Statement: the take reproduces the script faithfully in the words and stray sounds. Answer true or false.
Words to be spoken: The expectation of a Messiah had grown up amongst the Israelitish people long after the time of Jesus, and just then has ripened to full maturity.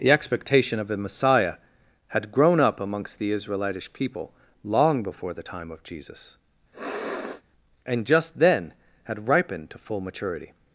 false